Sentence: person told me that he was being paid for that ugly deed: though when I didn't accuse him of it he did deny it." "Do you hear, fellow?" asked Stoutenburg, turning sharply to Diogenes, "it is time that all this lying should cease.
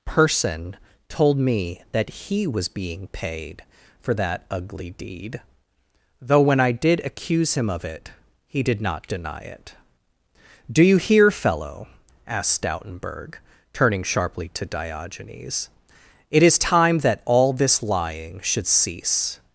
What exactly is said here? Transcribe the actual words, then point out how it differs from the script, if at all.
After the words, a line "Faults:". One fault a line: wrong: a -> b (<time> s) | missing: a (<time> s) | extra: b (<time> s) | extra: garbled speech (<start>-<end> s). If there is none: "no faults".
person told me that he was being paid for that ugly deed: though when I did accuse him of it he did not deny it." "Do you hear, fellow?" asked Stoutenburg, turning sharply to Diogenes, "it is time that all this lying should cease.
Faults:
wrong: didn't -> did (6.7 s)
extra: not (8.8 s)